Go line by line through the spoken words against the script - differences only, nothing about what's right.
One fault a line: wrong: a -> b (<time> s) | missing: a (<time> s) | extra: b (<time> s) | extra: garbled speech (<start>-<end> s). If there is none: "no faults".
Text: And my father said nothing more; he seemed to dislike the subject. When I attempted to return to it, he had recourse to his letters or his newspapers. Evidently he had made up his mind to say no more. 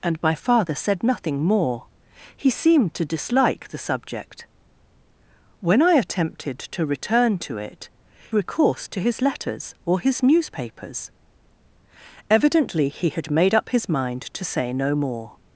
missing: he had (7.9 s)